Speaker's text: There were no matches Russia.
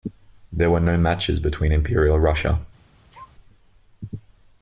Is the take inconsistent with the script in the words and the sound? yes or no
yes